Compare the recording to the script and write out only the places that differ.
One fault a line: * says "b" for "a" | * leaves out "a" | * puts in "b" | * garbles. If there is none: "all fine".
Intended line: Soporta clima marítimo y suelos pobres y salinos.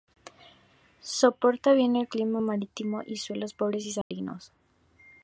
* puts in "bien el"